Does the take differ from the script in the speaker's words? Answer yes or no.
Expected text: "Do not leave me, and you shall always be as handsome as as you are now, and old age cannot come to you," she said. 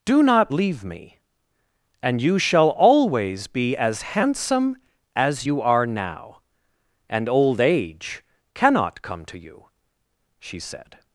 yes